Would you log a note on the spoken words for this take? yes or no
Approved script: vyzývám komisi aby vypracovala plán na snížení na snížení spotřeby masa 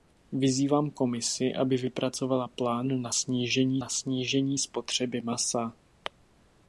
no